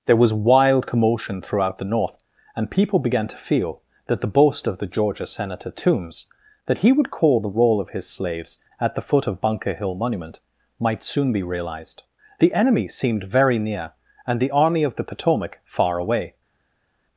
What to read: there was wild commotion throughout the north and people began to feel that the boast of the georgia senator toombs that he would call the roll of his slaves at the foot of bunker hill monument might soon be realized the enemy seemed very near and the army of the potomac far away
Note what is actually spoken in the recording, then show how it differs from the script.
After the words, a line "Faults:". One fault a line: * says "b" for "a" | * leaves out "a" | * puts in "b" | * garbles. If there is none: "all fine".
there was wild commotion throughout the north and people began to feel that the boast of the georgia senator toombs that he would call the roll of his slaves at the foot of bunker hill monument might soon be realized the enemy seemed very near and the army of the potomac far away
Faults:
all fine